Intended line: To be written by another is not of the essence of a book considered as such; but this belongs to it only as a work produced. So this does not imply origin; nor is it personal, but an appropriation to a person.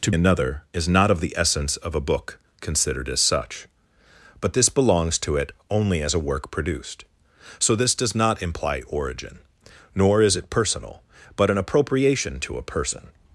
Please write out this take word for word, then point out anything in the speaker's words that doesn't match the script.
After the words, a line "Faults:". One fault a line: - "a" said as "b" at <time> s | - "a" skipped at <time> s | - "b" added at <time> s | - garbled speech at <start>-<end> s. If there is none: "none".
To another is not of the essence of a book considered as such; but this belongs to it only as a work produced. So this does not imply origin; nor is it personal, but an appropriation to a person.
Faults:
- "be written by" skipped at 0.1 s